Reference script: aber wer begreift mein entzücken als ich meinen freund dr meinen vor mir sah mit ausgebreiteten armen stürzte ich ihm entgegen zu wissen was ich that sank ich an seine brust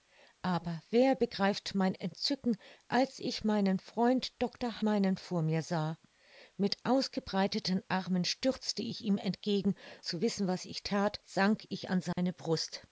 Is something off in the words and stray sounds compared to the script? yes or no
yes